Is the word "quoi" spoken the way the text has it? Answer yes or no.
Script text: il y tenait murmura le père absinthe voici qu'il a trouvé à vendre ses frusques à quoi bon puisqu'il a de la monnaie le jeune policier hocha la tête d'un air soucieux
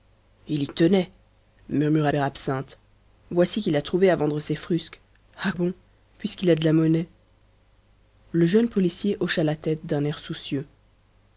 no